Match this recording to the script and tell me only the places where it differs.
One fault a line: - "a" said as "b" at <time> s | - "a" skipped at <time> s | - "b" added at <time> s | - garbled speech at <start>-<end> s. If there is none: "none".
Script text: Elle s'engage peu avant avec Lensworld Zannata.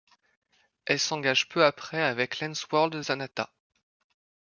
- "avant" said as "après" at 1.6 s